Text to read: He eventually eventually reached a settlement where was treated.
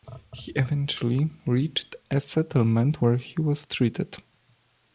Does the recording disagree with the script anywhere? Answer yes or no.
yes